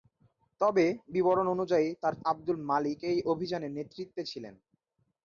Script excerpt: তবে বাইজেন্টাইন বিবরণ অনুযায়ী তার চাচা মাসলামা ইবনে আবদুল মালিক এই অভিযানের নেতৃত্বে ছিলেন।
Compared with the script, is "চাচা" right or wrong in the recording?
wrong